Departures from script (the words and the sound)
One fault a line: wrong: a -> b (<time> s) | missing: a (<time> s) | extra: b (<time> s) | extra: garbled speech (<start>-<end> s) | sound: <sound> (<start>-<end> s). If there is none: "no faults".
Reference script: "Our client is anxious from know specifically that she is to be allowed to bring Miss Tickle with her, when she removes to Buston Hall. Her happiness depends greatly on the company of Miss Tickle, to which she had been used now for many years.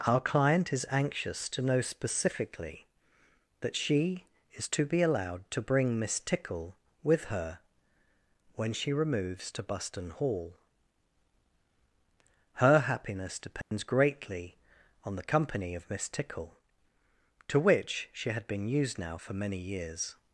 wrong: from -> to (1.5 s)
sound: dropout (13.6-13.7 s)